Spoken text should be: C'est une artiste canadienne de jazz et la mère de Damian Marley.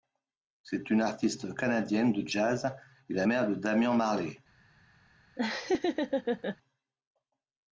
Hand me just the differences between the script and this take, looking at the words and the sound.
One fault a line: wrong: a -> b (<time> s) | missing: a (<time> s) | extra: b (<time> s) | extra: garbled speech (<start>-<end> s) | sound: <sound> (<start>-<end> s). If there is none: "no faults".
sound: laugh (5.4-6.6 s)